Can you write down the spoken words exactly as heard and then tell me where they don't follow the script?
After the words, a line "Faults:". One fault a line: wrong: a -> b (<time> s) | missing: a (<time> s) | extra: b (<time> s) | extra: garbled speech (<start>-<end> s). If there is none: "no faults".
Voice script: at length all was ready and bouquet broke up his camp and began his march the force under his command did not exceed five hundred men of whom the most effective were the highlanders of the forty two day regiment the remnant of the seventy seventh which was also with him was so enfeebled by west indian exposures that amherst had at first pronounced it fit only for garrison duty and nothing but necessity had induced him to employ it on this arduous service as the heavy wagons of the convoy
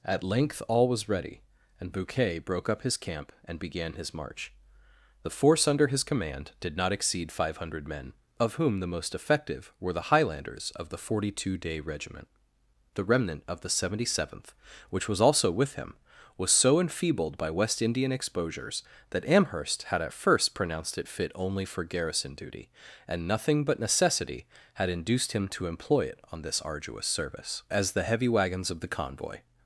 at length all was ready and bouquet broke up his camp and began his march the force under his command did not exceed five hundred men of whom the most effective were the highlanders of the forty two day regiment the remnant of the seventy seventh which was also with him was so enfeebled by west indian exposures that amherst had at first pronounced it fit only for garrison duty and nothing but necessity had induced him to employ it on this arduous service as the heavy wagons of the convoy
Faults:
no faults